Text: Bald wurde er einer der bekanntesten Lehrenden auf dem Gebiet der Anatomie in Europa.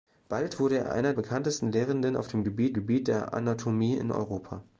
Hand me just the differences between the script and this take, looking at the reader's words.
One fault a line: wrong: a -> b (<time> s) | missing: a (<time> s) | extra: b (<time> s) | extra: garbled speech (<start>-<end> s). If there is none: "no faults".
missing: der (1.1 s)
extra: Gebiet (2.7 s)